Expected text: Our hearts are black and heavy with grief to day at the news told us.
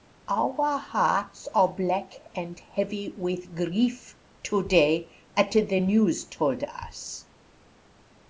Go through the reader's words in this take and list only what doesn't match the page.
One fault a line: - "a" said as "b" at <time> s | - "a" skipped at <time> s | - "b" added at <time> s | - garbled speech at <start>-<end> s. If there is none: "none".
none